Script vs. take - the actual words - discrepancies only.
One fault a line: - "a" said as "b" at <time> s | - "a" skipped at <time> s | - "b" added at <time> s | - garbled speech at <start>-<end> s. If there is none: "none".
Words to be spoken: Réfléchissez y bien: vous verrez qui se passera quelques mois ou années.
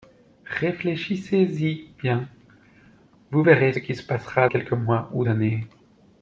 none